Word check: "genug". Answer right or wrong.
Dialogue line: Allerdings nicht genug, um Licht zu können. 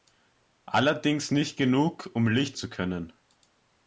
right